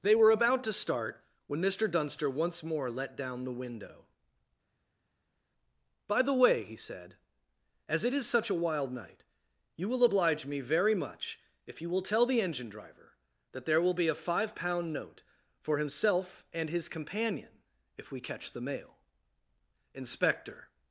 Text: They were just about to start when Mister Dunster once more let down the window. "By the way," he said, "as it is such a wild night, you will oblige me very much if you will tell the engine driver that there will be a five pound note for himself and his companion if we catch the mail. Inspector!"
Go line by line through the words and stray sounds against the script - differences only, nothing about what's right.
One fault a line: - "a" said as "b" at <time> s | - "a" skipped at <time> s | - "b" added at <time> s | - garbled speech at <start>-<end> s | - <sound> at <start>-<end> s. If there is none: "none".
- "just" skipped at 0.3 s